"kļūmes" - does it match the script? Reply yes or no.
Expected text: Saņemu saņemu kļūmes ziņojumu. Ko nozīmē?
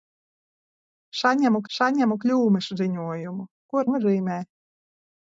yes